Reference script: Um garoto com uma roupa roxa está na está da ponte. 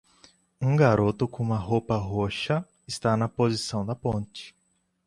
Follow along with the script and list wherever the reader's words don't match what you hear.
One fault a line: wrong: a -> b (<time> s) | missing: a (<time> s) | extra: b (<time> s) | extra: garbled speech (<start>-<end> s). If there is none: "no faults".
wrong: está -> posição (3.3 s)